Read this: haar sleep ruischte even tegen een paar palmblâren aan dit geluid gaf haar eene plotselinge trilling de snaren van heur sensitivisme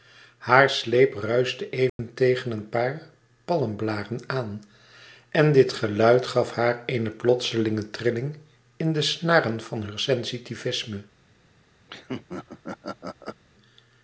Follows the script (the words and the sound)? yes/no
no